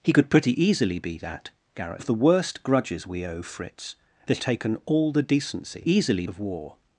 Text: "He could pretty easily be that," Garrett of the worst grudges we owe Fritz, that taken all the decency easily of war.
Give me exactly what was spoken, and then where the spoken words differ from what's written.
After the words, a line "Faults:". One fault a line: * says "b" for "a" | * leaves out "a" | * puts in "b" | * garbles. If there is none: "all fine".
"He could pretty easily be that," Garrett of the worst grudges we owe Fritz, that taken all the decency easily of war.
Faults:
all fine